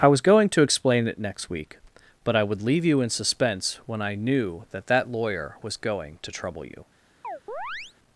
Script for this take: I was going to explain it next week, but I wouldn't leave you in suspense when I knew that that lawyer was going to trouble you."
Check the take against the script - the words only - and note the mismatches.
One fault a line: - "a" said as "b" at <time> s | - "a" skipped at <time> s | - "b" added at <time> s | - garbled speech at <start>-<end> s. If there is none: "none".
- "wouldn't" said as "would" at 2.4 s